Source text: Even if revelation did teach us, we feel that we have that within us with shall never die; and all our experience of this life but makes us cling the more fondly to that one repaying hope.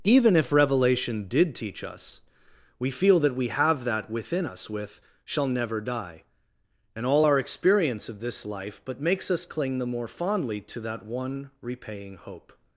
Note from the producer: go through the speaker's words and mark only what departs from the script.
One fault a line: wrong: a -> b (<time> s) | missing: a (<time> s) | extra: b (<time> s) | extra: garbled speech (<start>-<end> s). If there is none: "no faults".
no faults